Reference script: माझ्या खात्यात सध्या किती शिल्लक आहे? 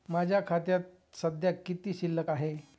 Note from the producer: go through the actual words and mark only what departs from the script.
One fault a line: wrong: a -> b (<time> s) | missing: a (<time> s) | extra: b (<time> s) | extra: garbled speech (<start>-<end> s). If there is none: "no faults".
no faults